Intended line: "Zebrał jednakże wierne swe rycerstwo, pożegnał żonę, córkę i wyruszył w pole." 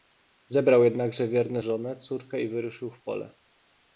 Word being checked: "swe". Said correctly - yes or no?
no